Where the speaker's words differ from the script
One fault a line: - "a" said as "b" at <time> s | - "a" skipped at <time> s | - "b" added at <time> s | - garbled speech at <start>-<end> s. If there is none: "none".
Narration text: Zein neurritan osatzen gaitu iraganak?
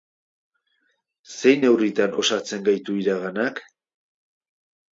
none